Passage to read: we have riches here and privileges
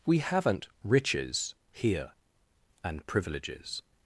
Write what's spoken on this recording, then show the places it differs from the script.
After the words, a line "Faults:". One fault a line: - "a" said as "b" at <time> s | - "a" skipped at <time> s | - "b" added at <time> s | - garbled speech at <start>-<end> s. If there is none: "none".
we haven't riches here and privileges
Faults:
- "have" said as "haven't" at 0.2 s